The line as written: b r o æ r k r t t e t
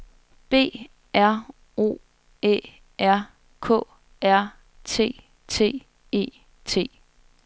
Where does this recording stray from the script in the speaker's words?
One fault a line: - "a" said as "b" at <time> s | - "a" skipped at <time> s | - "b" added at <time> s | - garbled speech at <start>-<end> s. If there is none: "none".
none